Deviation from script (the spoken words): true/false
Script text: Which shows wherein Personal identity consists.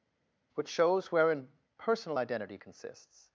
false